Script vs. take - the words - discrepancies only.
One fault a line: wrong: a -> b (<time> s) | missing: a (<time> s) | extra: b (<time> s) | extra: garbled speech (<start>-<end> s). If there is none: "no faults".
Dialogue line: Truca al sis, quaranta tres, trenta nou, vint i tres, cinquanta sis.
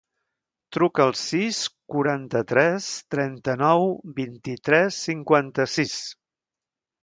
no faults